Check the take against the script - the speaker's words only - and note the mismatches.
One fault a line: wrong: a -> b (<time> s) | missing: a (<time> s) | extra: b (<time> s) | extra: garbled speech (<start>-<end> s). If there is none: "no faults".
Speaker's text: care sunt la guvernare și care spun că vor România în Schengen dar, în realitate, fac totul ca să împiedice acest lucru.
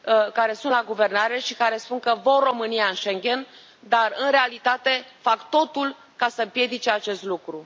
no faults